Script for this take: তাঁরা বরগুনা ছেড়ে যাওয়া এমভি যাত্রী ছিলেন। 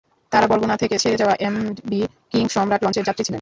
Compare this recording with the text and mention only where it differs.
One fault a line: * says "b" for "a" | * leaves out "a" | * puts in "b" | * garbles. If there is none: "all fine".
* puts in "থেকে"
* puts in "কিং সম্রাট লঞ্চের"